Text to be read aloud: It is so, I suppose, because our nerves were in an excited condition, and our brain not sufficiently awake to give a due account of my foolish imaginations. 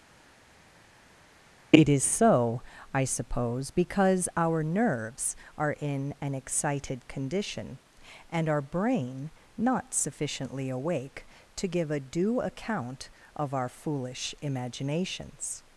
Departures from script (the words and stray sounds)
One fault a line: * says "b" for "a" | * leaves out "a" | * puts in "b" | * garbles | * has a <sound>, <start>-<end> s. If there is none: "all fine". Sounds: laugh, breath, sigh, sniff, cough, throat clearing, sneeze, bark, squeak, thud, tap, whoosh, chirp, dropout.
* says "are" for "were"
* says "our" for "my"